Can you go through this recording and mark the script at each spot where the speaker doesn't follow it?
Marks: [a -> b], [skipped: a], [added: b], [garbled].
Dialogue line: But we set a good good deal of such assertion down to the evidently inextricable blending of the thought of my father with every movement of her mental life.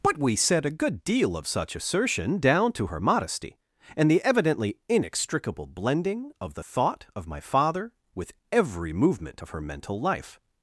But we set a good [skipped: good] deal of such assertion down to [added: her modesty and] the evidently inextricable blending of the thought of my father with every movement of her mental life.